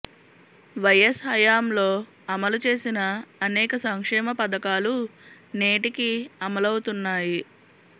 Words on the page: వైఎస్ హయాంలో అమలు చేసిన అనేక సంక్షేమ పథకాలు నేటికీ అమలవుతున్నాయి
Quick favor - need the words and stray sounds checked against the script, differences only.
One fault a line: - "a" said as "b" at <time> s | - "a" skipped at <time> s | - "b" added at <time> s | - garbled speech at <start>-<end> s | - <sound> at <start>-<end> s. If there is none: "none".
none